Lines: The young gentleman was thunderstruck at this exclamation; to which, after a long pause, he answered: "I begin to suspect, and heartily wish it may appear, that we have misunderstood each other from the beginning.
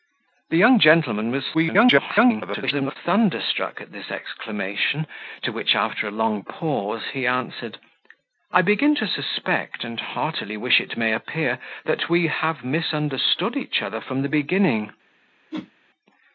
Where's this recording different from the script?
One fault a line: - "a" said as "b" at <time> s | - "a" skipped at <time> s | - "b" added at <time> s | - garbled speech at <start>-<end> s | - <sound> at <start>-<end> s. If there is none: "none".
- garbled speech at 1.5-3.0 s
- whoosh at 15.5-15.7 s